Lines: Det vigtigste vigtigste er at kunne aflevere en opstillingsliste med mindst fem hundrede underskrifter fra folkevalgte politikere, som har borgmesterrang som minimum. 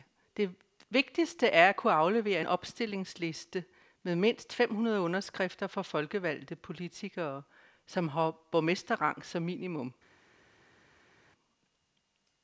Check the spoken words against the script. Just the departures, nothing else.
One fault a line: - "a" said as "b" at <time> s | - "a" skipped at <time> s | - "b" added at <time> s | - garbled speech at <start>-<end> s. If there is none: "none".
- "vigtigste" skipped at 1.5 s